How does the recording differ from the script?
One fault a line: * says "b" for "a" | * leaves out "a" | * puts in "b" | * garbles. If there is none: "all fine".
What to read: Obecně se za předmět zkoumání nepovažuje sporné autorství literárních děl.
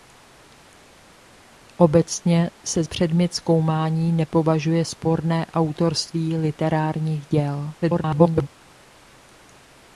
* leaves out "za"
* garbles